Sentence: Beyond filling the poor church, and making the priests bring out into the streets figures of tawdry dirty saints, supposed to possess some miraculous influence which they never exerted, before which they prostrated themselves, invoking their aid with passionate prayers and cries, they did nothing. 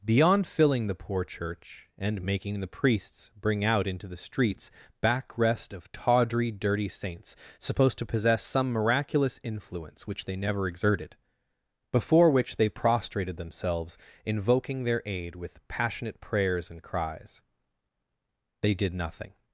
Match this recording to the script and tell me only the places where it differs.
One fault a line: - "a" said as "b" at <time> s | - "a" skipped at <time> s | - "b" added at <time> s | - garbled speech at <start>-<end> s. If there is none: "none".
- "figures" said as "backrest" at 5.0 s